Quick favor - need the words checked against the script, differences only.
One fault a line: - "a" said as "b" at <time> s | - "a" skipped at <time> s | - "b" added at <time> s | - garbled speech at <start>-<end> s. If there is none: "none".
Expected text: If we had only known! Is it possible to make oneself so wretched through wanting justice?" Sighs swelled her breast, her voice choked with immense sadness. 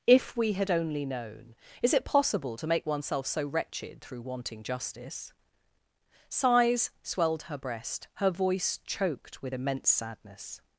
none